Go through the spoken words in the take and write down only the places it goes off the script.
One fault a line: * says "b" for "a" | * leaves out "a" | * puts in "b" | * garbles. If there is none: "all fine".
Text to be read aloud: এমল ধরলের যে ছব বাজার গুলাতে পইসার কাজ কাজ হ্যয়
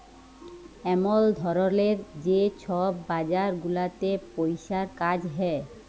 * leaves out "কাজ"